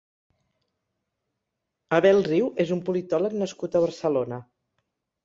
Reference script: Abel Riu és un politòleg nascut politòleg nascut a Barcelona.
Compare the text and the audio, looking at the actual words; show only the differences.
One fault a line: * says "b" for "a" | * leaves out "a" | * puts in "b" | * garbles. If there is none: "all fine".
* leaves out "politòleg nascut"